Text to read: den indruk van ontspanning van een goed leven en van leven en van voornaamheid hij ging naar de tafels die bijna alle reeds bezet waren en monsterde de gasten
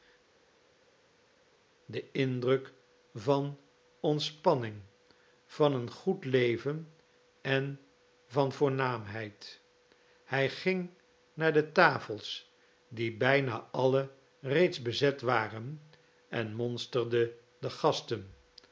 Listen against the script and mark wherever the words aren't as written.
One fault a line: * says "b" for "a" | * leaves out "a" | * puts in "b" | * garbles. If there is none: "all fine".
* leaves out "leven en van"